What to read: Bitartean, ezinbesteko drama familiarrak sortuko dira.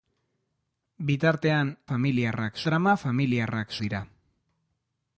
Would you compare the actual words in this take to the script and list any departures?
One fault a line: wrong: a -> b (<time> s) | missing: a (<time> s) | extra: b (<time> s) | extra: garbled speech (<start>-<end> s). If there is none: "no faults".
wrong: ezinbesteko -> familiarrak (1.9 s)
missing: sortuko (3.7 s)